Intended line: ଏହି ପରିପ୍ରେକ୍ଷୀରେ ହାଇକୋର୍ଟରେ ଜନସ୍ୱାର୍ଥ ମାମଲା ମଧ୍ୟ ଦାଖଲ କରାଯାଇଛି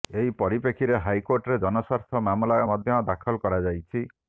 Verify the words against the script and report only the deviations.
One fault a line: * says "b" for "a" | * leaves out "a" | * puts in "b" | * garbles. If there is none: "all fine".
all fine